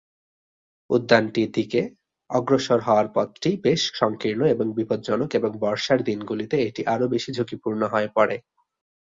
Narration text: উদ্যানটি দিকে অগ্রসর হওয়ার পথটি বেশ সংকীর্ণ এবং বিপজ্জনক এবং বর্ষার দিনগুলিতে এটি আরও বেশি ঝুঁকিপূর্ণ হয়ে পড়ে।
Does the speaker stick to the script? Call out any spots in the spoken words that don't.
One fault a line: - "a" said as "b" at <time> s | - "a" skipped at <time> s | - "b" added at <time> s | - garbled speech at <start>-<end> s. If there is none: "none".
none